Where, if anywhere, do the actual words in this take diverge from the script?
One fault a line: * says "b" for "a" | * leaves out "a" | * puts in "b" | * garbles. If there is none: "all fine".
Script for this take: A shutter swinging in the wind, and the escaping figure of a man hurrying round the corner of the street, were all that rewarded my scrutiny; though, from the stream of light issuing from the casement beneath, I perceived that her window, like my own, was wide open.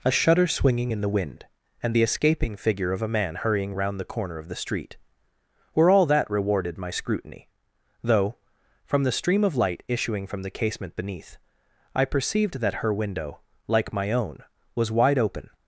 all fine